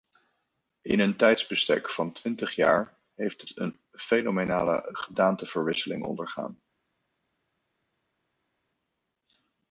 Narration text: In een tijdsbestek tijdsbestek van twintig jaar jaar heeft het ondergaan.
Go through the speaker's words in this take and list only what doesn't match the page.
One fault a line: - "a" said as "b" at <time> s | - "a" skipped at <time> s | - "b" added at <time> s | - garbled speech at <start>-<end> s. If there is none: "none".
- "tijdsbestek" skipped at 1.9 s
- "jaar" skipped at 3.0 s
- "een fenomenale gedaanteverwisseling" added at 3.6 s